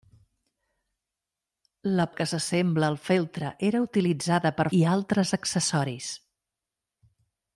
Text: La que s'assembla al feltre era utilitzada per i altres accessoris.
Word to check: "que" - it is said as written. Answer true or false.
true